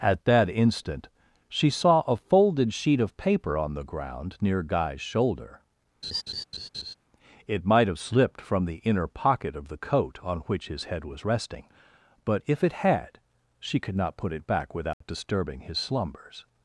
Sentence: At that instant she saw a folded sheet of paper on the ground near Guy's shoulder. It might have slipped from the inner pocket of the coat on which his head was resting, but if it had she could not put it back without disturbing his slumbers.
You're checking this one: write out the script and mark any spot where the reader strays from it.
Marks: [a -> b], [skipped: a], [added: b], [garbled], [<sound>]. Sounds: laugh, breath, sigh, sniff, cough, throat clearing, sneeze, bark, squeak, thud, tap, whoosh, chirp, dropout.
At that instant she saw a folded sheet of paper on the ground near Guy's shoulder. [laugh] It might have slipped from the inner pocket of the coat on which his head was resting, but if it had she could not put it back without [dropout] disturbing his slumbers.